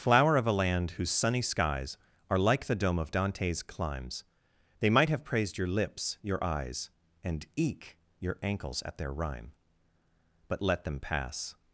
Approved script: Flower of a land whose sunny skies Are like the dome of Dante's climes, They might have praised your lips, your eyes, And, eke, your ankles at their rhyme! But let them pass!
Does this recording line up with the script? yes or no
yes